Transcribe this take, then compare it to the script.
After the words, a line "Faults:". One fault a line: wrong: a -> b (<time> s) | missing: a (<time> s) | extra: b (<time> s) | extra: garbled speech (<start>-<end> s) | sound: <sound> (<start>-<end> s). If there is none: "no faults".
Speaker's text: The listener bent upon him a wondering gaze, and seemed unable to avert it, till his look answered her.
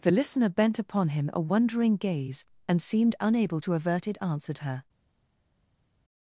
The listener bent upon him a wondering gaze, and seemed unable to avert it, answered her.
Faults:
missing: till his look (4.2 s)